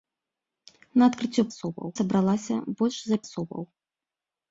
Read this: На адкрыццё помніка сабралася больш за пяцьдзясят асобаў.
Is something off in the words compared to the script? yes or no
yes